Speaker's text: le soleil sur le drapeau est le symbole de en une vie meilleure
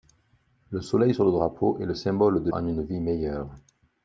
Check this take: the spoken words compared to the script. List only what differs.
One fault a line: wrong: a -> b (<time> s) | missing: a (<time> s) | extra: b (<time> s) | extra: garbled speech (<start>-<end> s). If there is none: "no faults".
no faults